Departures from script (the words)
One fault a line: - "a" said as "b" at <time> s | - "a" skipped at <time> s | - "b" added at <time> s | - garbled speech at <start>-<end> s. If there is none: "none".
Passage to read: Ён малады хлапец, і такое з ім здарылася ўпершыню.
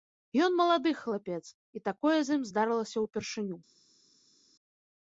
none